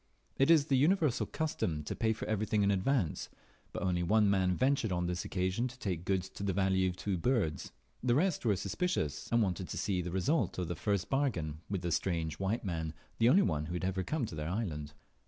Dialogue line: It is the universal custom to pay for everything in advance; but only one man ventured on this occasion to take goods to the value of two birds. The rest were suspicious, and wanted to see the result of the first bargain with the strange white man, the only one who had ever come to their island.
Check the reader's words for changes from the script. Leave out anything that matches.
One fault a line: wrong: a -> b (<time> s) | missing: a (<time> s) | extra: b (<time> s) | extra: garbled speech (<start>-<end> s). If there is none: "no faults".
no faults